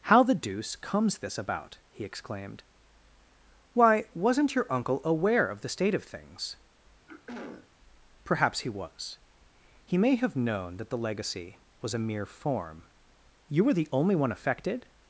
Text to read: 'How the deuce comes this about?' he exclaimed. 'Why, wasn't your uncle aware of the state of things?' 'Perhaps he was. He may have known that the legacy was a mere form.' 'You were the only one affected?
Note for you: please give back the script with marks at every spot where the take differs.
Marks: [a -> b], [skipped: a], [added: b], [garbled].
'How the deuce comes this about?' he exclaimed. 'Why, wasn't your uncle aware of the state of things?' 'Perhaps he was. He may have known that the legacy was a mere form.' 'You were the only one affected?